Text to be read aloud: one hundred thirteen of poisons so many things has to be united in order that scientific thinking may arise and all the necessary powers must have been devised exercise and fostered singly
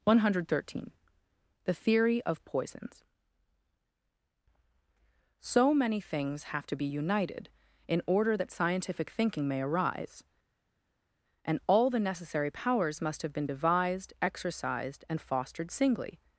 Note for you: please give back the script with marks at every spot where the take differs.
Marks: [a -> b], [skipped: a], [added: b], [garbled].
one hundred thirteen [added: the theory] of poisons so many things [has -> have] to be united in order that scientific thinking may arise and all the necessary powers must have been devised [exercise -> exercised] and fostered singly